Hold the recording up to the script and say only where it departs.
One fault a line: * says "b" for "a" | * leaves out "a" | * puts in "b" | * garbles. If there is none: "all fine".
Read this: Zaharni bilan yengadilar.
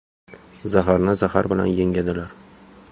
* puts in "zahar"